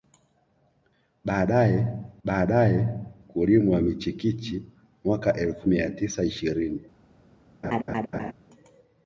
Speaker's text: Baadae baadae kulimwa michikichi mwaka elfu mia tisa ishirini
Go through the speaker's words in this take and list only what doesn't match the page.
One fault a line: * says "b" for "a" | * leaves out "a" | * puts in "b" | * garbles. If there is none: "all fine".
all fine